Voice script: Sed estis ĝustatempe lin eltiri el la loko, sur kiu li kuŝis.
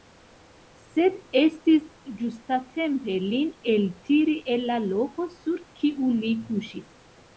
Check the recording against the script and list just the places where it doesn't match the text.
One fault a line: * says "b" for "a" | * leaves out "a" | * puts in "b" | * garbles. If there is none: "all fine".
all fine